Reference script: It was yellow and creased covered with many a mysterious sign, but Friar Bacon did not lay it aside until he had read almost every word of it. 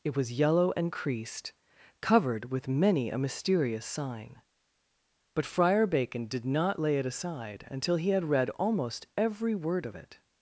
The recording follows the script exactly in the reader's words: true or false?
true